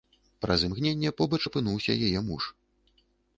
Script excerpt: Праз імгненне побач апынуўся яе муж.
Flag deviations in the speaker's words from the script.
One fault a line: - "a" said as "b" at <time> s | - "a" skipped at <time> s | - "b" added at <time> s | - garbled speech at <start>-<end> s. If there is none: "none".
none